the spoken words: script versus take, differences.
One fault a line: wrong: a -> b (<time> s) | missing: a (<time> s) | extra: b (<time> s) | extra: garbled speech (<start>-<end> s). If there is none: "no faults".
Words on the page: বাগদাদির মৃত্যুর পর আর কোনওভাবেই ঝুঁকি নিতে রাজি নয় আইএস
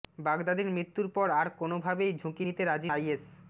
missing: নয় (2.9 s)